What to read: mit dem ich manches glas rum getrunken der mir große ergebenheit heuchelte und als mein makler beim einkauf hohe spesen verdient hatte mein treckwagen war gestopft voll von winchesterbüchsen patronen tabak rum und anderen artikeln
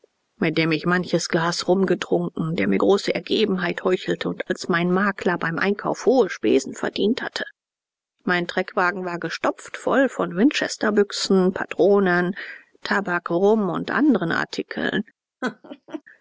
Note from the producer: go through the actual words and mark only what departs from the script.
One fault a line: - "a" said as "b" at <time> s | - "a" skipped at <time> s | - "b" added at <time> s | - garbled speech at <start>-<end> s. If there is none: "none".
none